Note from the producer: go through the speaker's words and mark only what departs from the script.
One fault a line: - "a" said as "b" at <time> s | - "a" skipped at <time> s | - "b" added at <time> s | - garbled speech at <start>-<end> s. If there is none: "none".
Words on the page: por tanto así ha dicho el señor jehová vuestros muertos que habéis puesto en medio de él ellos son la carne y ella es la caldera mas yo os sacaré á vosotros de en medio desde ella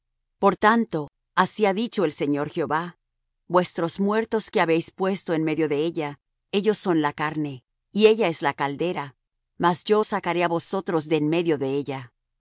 - "él" said as "ella" at 5.8 s
- "desde" said as "de" at 11.6 s